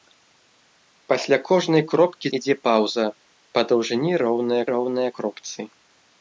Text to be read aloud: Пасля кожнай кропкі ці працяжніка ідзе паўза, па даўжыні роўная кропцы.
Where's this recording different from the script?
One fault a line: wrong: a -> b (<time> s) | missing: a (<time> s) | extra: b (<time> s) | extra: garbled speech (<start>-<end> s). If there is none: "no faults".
missing: ці працяжніка (2.3 s)
extra: роўная (4.7 s)